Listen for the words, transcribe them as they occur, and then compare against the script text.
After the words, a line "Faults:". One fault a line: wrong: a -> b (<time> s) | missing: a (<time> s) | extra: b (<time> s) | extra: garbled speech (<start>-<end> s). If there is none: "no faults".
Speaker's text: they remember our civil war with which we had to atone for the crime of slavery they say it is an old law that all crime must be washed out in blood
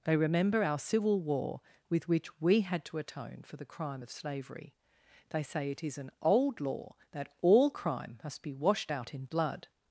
they remember our civil war with which we had to atone for the crime of slavery they say it is an old law that all crime must be washed out in blood
Faults:
no faults